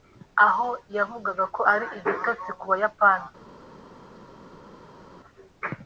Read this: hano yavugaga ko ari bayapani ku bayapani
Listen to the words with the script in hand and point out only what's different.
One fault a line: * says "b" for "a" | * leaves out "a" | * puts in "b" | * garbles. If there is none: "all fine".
* says "aho" for "hano"
* says "igitotsi" for "bayapani"